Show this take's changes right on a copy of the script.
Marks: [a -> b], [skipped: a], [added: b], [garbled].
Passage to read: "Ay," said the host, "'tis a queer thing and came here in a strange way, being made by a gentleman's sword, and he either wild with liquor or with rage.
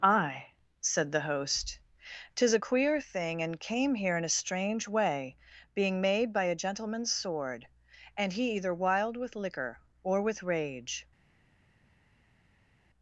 "Ay," said the host, "'tis a queer thing and came here in a strange way, being made by a gentleman's sword, and he either wild with liquor or with rage.